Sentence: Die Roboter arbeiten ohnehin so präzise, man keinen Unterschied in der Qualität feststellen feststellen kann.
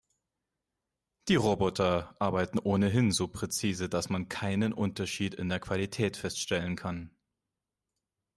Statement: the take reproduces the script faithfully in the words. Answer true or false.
false